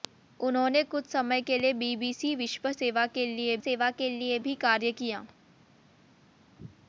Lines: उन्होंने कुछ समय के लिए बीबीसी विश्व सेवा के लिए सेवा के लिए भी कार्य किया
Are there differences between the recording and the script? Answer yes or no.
no